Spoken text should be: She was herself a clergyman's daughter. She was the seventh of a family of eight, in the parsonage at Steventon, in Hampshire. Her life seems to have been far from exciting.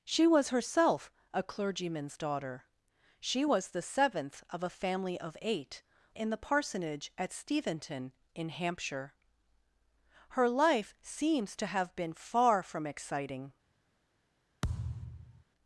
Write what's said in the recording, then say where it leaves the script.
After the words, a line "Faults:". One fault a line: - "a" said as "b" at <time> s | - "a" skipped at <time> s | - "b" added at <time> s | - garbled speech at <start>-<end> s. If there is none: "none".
She was herself a clergyman's daughter. She was the seventh of a family of eight, in the parsonage at Steventon, in Hampshire. Her life seems to have been far from exciting.
Faults:
none